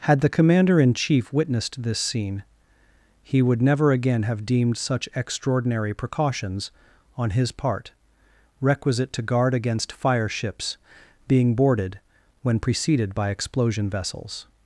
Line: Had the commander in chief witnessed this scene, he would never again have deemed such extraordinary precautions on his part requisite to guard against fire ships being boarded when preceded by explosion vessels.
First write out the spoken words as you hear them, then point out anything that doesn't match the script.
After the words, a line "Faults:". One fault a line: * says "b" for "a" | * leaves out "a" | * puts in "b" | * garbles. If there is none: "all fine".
Had the commander in chief witnessed this scene, he would never again have deemed such extraordinary precautions on his part requisite to guard against fire ships being boarded when preceded by explosion vessels.
Faults:
all fine